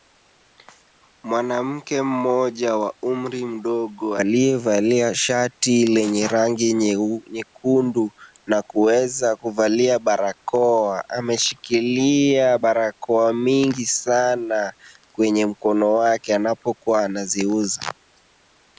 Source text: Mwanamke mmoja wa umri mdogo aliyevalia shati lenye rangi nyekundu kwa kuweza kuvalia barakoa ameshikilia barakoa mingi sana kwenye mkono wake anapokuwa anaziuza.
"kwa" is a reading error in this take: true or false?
true